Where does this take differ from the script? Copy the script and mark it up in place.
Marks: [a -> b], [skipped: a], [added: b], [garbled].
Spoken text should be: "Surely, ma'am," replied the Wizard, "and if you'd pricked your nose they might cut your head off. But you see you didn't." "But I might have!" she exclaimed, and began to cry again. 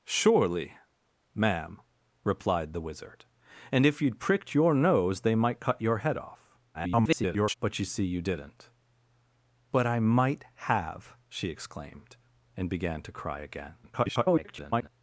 "Surely, ma'am," replied the Wizard, "and if you'd pricked your nose they might cut your head off. [garbled] But you see you didn't." "But I might have!" she exclaimed, and began to cry again. [garbled]